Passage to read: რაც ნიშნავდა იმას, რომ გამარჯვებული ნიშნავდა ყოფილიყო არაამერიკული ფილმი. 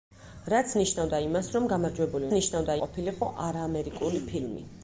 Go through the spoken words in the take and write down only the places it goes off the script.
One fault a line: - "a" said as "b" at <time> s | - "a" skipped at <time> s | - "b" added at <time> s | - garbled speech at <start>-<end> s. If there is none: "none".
none